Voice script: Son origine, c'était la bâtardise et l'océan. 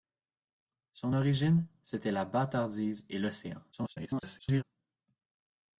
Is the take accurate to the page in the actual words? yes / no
no